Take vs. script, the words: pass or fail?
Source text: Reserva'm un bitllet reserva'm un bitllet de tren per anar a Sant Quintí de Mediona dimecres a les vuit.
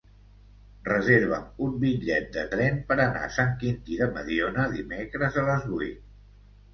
fail